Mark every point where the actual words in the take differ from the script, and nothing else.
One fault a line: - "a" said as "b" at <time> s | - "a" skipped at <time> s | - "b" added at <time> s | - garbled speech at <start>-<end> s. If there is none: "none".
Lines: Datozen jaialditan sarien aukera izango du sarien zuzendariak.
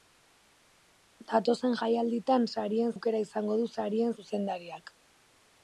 none